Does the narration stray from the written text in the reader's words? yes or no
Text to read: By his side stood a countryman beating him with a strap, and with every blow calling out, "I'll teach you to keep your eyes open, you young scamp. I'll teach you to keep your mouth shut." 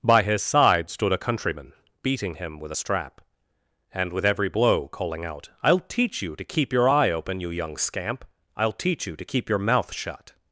yes